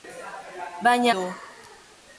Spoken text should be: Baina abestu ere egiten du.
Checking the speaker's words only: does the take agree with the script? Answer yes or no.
no